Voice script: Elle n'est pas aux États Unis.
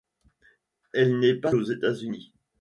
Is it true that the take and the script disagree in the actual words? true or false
false